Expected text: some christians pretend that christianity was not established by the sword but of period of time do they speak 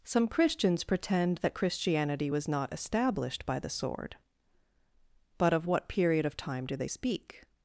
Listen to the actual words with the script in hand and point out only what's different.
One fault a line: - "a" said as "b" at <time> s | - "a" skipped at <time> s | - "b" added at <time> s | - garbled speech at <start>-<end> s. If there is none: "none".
- "what" added at 5.7 s